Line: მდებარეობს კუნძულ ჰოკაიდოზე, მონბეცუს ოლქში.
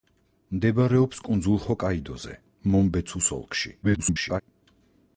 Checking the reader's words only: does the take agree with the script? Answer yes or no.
no